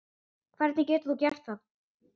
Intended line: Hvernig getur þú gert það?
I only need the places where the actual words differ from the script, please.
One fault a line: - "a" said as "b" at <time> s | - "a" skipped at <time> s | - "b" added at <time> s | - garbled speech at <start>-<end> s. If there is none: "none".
none